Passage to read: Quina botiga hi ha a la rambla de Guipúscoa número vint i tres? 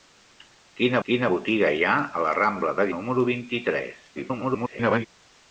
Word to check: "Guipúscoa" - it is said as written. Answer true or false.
false